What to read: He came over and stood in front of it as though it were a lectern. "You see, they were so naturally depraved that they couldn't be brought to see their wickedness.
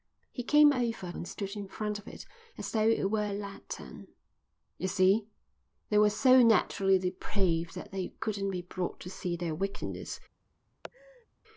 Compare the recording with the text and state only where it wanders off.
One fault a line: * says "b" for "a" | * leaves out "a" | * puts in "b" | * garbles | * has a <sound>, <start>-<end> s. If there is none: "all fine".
* has a laugh, 10.8-11.3 s